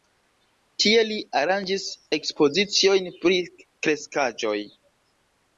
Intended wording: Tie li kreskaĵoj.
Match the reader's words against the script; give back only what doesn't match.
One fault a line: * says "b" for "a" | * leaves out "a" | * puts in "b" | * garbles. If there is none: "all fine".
* puts in "aranĝis ekspoziciojn pri"